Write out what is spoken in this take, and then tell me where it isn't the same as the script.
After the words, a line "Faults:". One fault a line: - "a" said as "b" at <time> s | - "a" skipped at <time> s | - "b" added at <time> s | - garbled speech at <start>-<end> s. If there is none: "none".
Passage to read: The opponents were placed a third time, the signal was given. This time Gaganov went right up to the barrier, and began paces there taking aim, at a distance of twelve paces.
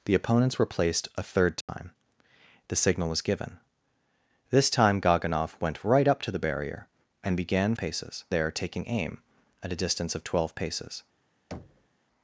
The opponents were placed a third time, the signal was given. This time Gaganov went right up to the barrier, and began paces there taking aim, at a distance of twelve paces.
Faults:
none